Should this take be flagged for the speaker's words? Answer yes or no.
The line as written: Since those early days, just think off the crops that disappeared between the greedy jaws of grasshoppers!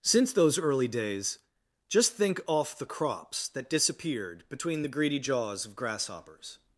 no